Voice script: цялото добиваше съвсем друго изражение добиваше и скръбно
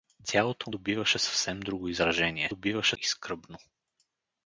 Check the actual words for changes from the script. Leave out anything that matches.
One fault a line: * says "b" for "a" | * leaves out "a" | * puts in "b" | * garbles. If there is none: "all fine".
all fine